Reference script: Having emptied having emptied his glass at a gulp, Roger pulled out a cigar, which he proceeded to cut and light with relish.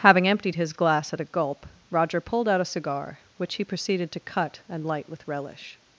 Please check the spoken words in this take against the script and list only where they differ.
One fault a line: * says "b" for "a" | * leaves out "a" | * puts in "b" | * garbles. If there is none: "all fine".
* leaves out "having emptied"